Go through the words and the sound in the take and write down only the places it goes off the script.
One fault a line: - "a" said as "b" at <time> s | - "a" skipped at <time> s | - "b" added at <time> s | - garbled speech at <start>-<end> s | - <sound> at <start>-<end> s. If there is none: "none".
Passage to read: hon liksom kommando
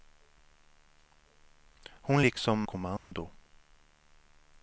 - dropout at 3.0-3.1 s